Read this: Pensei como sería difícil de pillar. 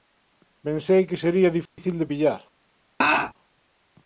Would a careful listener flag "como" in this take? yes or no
yes